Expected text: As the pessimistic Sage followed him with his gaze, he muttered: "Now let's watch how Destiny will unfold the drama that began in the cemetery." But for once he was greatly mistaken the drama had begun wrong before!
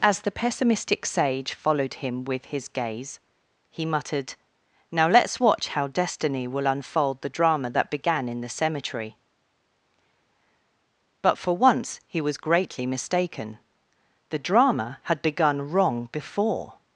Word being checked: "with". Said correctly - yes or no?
yes